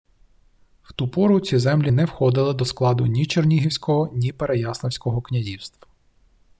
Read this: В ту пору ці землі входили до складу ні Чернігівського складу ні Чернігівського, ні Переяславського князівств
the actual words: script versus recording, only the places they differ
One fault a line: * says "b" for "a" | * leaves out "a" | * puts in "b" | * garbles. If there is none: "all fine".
* puts in "не"
* leaves out "складу ні Чернігівського"